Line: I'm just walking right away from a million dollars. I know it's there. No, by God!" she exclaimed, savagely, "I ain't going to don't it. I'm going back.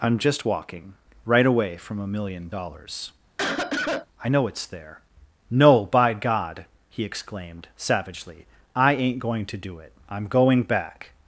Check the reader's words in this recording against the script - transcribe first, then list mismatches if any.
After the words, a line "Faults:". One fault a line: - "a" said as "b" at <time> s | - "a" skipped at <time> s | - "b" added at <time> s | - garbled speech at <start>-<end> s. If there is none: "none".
I'm just walking right away from a million dollars. I know it's there. No, by God!" he exclaimed, savagely, "I ain't going to do it. I'm going back.
Faults:
- "she" said as "he" at 6.9 s
- "don't" said as "do" at 9.6 s